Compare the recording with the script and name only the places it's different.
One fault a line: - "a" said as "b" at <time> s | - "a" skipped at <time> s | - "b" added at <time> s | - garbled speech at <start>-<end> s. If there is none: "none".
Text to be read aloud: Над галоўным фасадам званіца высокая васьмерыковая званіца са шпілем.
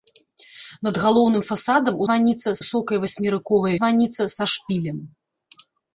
none